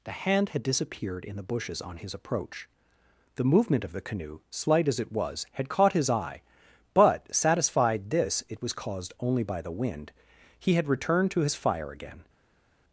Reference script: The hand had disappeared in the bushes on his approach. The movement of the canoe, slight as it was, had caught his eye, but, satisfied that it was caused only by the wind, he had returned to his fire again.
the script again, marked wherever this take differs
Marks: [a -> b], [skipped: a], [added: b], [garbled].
The hand had disappeared in the bushes on his approach. The movement of the canoe, slight as it was, had caught his eye, but, satisfied [that -> this] it was caused only by the wind, he had returned to his fire again.